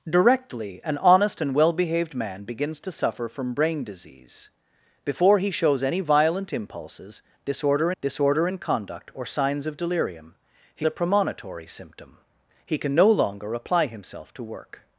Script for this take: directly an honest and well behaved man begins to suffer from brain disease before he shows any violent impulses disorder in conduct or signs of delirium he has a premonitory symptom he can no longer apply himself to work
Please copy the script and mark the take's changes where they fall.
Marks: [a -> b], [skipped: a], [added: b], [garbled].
directly an honest and well behaved man begins to suffer from brain disease before he shows any violent impulses disorder [added: disorder] in conduct or signs of delirium he [skipped: has] a premonitory symptom he can no longer apply himself to work